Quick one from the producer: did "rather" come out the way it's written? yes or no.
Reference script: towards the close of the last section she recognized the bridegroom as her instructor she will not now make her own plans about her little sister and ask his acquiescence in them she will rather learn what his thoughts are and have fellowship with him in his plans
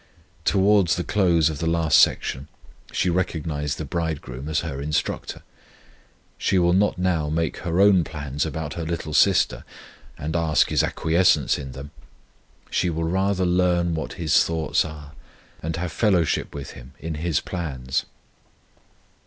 yes